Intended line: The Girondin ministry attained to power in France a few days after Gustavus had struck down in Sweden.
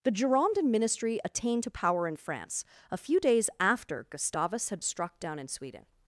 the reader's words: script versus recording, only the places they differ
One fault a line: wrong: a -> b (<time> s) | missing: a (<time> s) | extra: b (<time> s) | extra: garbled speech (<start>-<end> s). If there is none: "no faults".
no faults